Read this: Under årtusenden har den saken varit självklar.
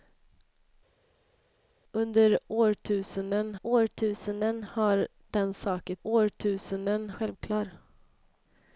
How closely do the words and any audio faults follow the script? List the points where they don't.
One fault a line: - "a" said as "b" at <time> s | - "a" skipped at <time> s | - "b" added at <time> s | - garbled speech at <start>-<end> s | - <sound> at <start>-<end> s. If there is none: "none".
- "årtusenden" added at 3.6 s
- "varit" said as "årtusenden" at 6.0 s